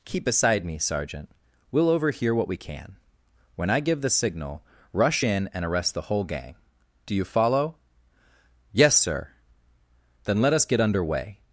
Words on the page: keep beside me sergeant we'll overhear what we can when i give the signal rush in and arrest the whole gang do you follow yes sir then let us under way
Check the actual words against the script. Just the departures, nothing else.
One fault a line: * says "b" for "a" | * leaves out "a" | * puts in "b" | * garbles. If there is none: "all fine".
* puts in "get"